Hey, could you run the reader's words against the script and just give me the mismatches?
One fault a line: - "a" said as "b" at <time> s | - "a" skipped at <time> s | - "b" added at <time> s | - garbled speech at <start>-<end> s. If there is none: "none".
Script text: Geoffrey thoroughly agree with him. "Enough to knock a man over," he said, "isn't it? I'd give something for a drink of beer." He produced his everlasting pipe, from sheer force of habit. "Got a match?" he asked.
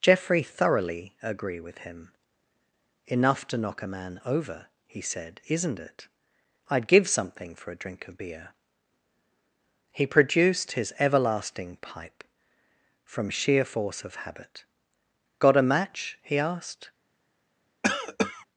none